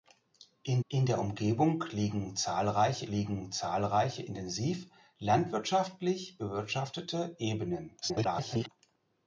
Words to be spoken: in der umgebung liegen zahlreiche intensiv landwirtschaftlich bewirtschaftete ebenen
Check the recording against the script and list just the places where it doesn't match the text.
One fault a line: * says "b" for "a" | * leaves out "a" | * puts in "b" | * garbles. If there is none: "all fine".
* puts in "in"
* puts in "liegen zahlreiche"
* garbles